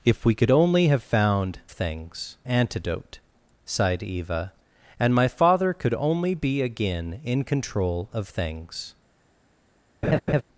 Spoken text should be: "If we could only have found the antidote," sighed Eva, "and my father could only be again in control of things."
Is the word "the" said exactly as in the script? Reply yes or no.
no